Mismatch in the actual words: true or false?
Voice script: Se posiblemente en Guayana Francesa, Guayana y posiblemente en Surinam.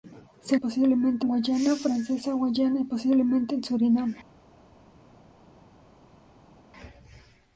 false